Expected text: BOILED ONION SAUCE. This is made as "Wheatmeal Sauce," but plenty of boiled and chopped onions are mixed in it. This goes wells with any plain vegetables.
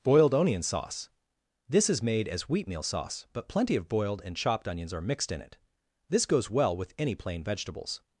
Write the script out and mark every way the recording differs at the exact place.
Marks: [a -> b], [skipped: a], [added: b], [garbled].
BOILED ONION SAUCE. This is made as "Wheatmeal Sauce," but plenty of boiled and chopped onions are mixed in it. This goes [wells -> well] with any plain vegetables.